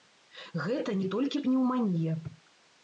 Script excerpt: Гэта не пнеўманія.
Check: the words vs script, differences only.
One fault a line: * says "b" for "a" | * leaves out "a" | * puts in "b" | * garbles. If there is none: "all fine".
* puts in "толькі"